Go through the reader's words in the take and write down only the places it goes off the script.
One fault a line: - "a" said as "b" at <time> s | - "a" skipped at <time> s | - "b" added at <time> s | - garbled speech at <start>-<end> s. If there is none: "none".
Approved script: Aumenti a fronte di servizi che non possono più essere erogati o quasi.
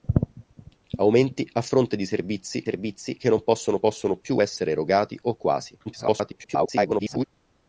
- "servizi" added at 2.6 s
- "possono" added at 3.8 s
- garbled speech at 5.9-7.3 s